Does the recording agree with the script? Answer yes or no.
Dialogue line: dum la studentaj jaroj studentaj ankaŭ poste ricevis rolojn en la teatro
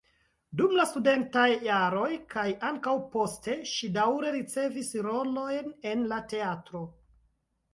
no